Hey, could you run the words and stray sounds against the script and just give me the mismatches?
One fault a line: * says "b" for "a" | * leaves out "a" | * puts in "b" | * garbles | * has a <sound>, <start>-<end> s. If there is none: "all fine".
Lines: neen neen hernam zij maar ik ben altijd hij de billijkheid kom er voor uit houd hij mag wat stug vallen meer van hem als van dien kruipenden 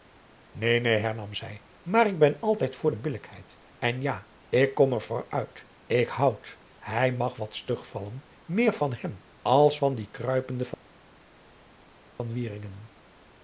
* says "voor" for "hij"
* puts in "en ja ik"
* puts in "ik"